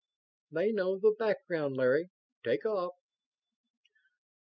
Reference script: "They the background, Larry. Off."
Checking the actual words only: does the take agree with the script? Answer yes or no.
no